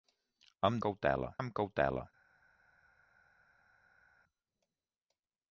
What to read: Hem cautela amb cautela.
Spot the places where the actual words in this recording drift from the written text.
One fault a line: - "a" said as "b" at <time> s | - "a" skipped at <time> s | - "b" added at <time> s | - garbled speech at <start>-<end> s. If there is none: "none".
none